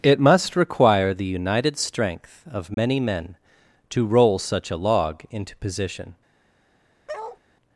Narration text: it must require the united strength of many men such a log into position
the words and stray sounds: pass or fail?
fail